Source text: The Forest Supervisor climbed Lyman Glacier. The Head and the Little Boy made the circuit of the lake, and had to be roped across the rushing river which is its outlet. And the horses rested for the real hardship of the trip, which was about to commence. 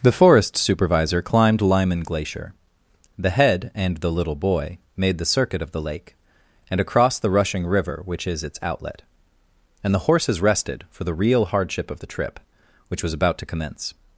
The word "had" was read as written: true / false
false